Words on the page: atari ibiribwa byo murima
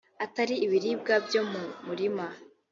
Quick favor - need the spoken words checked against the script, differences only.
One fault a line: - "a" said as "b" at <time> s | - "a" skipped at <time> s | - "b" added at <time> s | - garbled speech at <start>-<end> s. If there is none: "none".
- "mu" added at 1.5 s